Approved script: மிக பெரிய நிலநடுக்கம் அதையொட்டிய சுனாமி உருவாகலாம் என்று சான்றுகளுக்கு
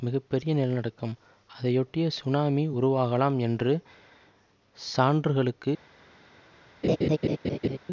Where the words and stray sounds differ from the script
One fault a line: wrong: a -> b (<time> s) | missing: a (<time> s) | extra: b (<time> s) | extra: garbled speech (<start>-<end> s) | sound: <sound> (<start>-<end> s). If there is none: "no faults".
sound: laugh (6.8-7.8 s)